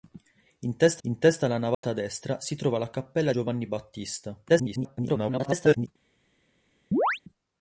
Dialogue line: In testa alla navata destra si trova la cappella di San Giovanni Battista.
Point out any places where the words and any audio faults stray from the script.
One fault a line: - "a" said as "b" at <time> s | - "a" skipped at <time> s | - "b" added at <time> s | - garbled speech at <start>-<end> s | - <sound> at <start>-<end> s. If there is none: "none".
- "in testa" added at 1.0 s
- dropout at 1.7-1.8 s
- "di San" skipped at 3.3 s
- garbled speech at 4.5-5.9 s
- chirp at 6.9-7.2 s